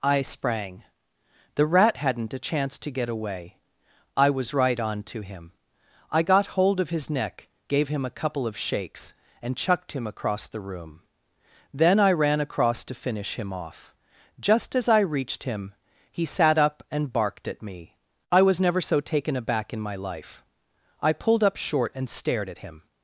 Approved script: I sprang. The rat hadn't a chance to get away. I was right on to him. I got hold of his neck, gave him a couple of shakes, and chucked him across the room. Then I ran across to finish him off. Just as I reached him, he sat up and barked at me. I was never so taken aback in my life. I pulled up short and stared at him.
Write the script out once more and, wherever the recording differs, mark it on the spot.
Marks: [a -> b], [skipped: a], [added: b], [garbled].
I sprang. The rat hadn't a chance to get away. I was right on to him. I got hold of his neck, gave him a couple of shakes, and chucked him across the room. Then I ran across to finish him off. Just as I reached him, he sat up and barked at me. I was never so taken aback in my life. I pulled up short and stared at him.